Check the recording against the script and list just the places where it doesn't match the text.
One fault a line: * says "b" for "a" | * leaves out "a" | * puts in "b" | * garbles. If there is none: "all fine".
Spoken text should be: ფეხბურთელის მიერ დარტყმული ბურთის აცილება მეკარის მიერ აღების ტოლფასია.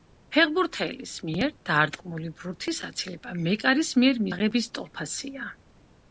all fine